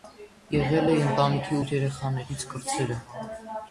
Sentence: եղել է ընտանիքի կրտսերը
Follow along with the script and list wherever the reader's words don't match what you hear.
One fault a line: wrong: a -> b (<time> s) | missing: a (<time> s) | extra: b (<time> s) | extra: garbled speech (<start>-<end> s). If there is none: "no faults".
extra: ութ երեխաներից (1.6 s)